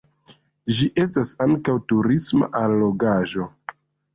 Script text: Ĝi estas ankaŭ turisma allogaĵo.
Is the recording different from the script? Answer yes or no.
no